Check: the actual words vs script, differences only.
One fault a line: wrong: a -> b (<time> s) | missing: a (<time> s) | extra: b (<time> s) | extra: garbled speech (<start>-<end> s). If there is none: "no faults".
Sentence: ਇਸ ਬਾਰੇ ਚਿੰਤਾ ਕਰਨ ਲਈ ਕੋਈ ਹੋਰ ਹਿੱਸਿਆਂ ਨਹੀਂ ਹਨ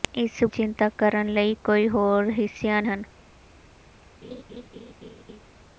missing: ਬਾਰੇ (0.4 s)
missing: ਨਹੀਂ (2.8 s)